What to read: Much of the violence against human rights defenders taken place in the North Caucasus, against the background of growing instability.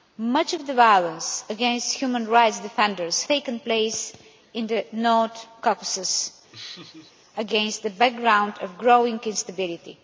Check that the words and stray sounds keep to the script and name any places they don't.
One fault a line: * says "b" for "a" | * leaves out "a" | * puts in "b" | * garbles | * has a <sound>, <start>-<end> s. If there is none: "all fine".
* has a laugh, 6.5-7.1 s